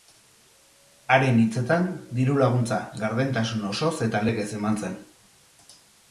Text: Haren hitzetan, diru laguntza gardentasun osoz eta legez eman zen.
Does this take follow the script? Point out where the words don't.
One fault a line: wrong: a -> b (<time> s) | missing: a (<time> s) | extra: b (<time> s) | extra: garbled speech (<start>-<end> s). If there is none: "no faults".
no faults